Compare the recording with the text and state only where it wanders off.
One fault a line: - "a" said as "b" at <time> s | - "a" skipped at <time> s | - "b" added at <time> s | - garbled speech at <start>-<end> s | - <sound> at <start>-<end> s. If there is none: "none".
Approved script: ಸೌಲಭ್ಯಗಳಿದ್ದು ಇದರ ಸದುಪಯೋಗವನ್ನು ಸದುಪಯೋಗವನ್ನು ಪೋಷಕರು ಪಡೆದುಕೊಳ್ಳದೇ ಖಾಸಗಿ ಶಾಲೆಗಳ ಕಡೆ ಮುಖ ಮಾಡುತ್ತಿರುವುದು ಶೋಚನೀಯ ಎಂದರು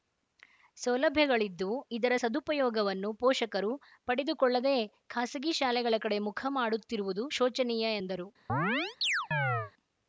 - "ಸದುಪಯೋಗವನ್ನು" skipped at 3.1 s
- chirp at 8.5-9.7 s